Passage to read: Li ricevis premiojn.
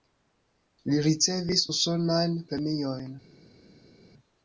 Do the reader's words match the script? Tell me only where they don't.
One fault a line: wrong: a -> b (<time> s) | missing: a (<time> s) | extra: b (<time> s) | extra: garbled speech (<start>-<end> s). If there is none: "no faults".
extra: usonajn (1.7 s)